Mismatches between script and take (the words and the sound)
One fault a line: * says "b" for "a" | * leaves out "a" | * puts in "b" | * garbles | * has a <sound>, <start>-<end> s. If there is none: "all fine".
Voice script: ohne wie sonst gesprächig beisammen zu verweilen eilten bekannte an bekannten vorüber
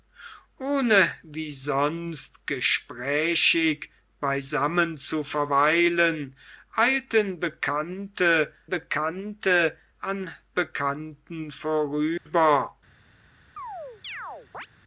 * puts in "bekannte"
* has a dropout, 12.2-12.3 s
* has a chirp, 13.6-14.7 s